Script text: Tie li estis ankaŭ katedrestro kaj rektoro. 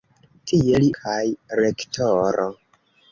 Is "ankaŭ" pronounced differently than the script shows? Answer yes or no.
yes